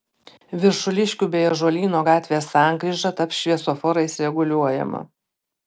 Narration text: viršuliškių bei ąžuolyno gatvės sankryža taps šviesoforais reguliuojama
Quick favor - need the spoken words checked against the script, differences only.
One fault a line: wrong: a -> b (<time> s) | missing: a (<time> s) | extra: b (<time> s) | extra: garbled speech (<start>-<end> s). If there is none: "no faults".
no faults